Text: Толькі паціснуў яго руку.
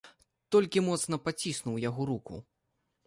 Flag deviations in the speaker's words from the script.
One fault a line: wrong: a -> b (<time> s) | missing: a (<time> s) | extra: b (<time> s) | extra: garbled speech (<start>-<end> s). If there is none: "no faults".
extra: моцна (0.9 s)